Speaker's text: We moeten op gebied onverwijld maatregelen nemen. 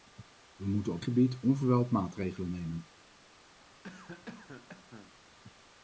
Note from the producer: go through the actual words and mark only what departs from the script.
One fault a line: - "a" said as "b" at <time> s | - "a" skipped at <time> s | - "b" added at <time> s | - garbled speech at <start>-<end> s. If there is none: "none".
none